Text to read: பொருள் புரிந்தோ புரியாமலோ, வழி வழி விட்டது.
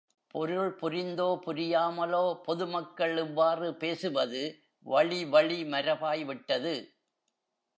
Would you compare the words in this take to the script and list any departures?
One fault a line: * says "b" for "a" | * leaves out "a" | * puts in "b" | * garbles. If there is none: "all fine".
* puts in "பொதுமக்கள் இவ்வாறு பேசுவது"
* puts in "மரபாய்"